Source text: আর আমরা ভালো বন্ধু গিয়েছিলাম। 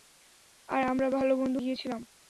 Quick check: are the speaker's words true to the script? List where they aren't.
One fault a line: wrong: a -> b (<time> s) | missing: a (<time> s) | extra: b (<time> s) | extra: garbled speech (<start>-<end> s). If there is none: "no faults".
no faults